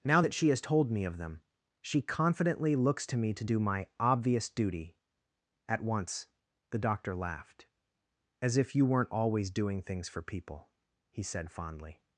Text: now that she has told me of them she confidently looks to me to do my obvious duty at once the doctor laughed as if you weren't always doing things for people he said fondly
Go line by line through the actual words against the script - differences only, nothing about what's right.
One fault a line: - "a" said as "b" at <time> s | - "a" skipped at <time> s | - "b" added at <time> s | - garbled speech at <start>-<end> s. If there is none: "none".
none